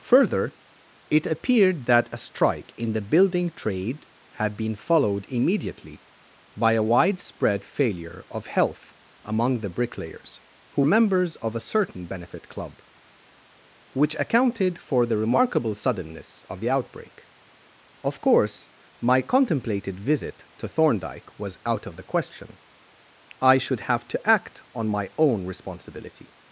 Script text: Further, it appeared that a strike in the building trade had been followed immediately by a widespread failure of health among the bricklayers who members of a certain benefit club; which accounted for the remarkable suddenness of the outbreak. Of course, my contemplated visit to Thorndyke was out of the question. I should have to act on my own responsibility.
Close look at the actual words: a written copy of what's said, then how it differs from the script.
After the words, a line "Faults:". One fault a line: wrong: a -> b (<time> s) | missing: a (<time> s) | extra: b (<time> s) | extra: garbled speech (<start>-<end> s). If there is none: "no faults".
Further, it appeared that a strike in the building trade had been followed immediately by a widespread failure of health among the bricklayers who members of a certain benefit club; which accounted for the remarkable suddenness of the outbreak. Of course, my contemplated visit to Thorndyke was out of the question. I should have to act on my own responsibility.
Faults:
no faults